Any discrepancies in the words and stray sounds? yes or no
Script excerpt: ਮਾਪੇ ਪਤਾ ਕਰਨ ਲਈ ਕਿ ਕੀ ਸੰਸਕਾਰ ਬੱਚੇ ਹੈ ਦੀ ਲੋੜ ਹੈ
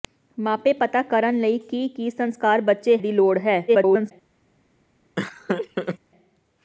yes